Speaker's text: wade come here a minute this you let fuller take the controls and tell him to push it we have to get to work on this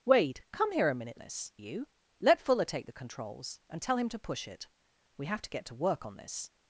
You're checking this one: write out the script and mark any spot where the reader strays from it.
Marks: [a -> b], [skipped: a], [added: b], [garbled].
wade come here a minute this you let fuller take the controls and tell him to push it we have to get to work on this